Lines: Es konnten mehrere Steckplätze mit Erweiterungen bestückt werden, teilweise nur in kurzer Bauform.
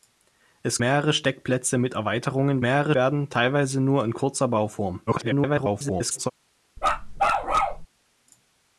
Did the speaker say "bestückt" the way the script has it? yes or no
no